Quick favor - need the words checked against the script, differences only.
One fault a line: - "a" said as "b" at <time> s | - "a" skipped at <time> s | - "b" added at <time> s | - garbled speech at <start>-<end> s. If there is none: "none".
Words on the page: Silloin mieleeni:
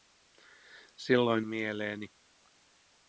none